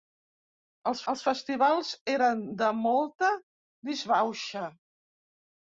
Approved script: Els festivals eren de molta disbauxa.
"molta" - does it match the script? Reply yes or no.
yes